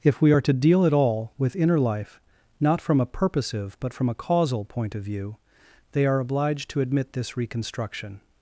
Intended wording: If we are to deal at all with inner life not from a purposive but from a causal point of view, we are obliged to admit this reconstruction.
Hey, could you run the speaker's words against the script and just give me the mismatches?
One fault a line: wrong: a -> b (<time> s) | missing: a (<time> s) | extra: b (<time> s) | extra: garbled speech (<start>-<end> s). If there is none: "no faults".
wrong: we -> they (5.9 s)